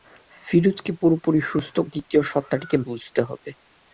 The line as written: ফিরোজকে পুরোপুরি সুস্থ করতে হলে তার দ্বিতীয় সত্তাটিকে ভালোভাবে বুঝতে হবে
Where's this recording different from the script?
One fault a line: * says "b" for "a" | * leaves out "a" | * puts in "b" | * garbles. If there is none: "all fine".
* leaves out "করতে হলে তার"
* leaves out "ভালোভাবে"